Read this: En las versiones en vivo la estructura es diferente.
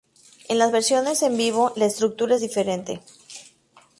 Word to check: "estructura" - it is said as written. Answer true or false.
true